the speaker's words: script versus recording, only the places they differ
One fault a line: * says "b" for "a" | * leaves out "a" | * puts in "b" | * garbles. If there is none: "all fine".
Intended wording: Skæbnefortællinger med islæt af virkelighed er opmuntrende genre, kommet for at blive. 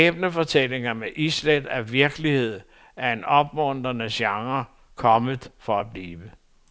* puts in "en"